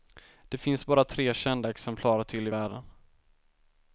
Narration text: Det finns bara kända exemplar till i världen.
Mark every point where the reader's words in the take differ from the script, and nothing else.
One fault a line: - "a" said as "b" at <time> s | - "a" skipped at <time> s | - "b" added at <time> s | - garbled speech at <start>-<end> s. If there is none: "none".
- "tre" added at 1.0 s